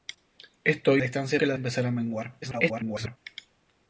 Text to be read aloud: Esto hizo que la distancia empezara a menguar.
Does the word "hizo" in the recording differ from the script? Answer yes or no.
yes